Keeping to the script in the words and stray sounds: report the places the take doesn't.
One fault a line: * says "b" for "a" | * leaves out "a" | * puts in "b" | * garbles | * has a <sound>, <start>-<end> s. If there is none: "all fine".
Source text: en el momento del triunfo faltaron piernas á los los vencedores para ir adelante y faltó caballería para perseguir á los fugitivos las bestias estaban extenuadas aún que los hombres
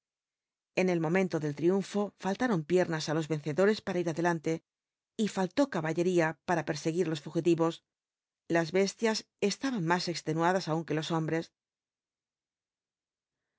* leaves out "los"
* puts in "más"